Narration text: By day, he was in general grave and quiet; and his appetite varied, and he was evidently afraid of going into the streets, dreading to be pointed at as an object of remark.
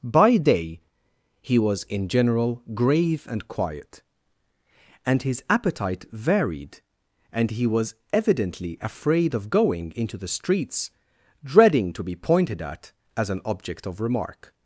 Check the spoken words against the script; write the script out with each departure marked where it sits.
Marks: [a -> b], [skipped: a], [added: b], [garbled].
By day, he was in general grave and quiet; and his appetite varied, and he was evidently afraid of going into the streets, dreading to be pointed at as an object of remark.